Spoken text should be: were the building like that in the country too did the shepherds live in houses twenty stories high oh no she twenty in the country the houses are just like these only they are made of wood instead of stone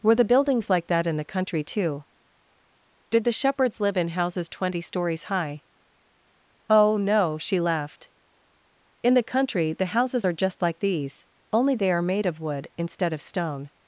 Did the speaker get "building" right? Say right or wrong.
wrong